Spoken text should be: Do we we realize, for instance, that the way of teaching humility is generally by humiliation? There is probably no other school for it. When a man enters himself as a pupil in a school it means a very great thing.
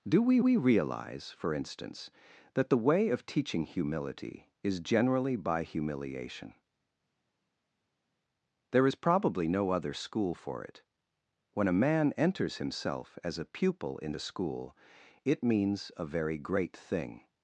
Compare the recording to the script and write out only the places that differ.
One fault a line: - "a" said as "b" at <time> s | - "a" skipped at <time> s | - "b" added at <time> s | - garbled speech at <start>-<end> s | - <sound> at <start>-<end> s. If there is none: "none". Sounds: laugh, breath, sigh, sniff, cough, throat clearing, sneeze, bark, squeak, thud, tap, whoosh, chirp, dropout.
none